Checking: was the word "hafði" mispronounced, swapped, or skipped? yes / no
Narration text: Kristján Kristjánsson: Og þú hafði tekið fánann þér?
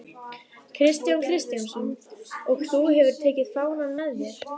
yes